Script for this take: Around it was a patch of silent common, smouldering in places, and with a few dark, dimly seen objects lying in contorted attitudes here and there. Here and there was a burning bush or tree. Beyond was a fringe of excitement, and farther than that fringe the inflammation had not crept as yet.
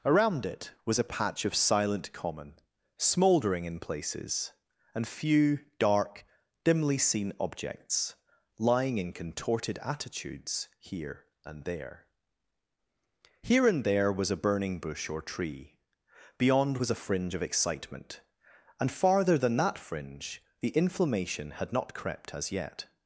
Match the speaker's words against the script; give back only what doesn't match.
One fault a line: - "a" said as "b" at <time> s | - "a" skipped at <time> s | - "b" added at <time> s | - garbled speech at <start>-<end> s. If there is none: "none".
- "with a" skipped at 5.1 s